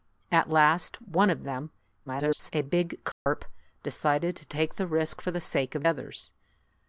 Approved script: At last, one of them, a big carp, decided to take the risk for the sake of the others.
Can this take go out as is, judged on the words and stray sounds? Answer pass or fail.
fail